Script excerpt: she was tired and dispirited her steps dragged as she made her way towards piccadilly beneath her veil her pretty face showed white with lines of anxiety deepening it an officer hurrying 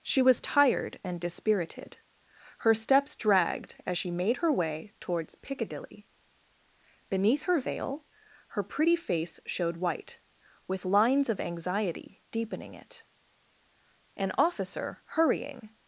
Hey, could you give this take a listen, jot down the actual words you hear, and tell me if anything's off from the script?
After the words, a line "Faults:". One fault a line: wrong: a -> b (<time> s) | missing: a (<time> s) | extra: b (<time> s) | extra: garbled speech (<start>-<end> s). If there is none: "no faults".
she was tired and dispirited her steps dragged as she made her way towards piccadilly beneath her veil her pretty face showed white with lines of anxiety deepening it an officer hurrying
Faults:
no faults